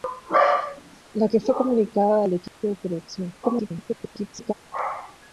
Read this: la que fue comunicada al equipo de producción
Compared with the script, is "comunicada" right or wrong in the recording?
right